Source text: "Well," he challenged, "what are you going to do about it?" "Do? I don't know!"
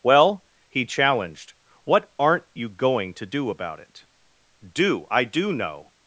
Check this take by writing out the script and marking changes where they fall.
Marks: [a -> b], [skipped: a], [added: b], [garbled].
"Well," he challenged, "what [are -> aren't] you going to do about it?" "Do? I [don't -> do] know!"